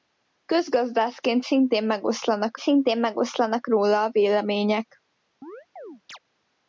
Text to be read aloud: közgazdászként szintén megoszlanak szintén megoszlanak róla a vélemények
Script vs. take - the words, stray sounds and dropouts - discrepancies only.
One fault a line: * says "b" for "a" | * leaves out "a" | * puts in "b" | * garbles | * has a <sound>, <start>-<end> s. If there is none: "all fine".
* has a chirp, 5.4-6.2 s